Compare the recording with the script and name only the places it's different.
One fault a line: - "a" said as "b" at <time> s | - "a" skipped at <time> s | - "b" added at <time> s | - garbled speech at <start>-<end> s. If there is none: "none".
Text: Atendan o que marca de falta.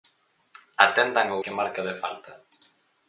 none